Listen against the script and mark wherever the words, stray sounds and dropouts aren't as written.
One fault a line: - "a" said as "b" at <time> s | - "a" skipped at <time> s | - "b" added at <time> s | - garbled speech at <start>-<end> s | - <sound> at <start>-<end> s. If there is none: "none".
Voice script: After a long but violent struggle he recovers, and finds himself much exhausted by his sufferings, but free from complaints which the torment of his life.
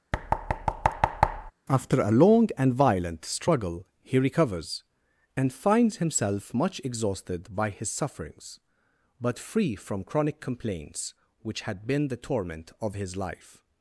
- thud at 0.1-1.5 s
- "but" said as "and" at 2.6 s
- "chronic" added at 10.0 s
- "had been" added at 11.6 s